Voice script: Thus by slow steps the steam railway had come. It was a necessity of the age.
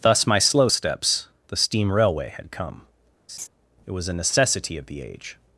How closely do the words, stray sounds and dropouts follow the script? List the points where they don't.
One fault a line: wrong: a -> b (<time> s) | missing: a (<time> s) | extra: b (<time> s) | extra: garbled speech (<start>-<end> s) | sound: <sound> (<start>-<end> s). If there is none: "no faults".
wrong: by -> my (0.2 s)
sound: laugh (3.3-3.5 s)